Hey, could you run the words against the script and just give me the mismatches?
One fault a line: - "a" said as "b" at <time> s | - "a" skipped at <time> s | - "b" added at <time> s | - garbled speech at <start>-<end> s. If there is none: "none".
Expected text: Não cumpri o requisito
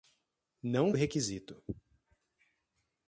- "cumpri" skipped at 0.9 s